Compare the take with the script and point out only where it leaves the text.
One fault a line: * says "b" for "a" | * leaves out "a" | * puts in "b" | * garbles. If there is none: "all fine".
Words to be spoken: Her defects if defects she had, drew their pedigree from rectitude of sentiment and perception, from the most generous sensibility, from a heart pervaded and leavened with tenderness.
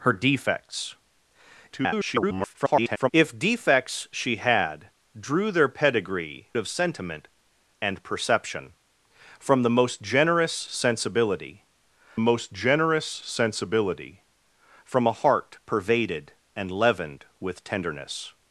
* garbles
* leaves out "from rectitude"
* puts in "most generous sensibility"